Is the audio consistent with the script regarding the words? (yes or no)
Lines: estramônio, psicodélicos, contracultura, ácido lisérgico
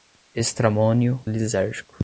no